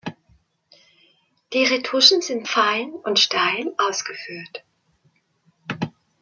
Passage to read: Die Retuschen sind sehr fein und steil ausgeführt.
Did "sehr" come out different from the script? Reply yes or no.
yes